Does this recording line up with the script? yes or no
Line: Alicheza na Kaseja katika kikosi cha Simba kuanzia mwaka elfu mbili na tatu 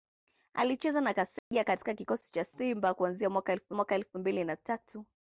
no